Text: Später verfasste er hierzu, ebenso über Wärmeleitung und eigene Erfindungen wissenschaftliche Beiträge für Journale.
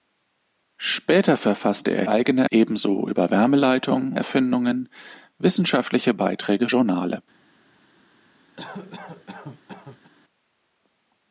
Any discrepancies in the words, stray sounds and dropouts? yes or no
yes